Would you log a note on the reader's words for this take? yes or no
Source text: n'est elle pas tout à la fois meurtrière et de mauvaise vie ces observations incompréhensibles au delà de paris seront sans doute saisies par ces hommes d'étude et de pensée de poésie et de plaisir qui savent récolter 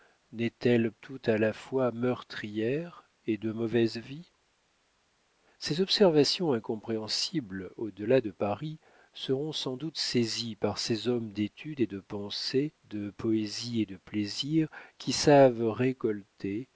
yes